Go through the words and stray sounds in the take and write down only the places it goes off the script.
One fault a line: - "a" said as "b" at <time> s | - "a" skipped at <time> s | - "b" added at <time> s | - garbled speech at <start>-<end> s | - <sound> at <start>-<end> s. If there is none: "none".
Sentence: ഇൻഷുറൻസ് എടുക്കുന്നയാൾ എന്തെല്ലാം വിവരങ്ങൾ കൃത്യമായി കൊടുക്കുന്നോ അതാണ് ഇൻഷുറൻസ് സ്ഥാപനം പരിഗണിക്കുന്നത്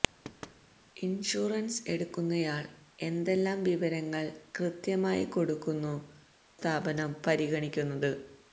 - thud at 0.2-0.6 s
- "അതാണ് ഇൻഷുറൻസ്" skipped at 5.9 s